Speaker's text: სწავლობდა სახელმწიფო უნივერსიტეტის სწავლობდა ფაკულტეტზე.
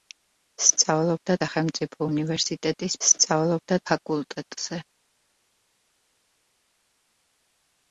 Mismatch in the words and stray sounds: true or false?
false